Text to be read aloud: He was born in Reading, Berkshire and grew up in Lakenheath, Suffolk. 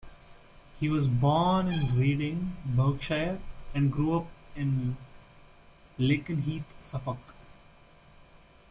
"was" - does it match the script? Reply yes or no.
yes